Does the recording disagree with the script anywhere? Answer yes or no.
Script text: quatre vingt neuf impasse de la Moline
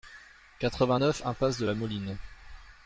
no